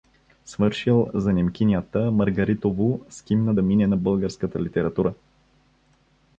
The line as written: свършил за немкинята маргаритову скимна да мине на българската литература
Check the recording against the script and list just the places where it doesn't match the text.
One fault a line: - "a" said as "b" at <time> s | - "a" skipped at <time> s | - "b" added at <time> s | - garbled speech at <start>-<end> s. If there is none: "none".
none